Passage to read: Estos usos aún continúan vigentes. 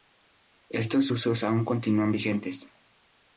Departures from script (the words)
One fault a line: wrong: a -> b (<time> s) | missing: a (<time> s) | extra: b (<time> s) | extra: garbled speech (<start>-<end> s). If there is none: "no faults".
no faults